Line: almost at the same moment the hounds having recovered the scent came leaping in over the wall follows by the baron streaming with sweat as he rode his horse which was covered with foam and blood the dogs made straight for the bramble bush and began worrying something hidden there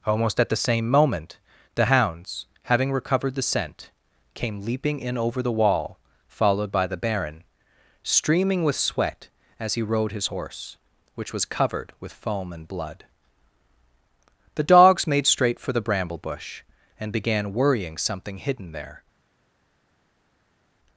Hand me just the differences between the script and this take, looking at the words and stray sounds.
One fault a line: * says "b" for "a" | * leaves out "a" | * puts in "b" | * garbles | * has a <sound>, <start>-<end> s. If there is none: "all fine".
* says "followed" for "follows"